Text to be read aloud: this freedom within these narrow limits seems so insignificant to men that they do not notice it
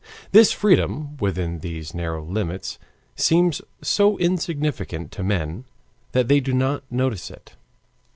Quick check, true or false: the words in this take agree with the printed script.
true